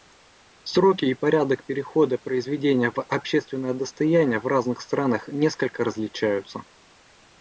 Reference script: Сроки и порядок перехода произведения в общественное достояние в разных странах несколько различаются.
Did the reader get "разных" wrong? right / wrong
right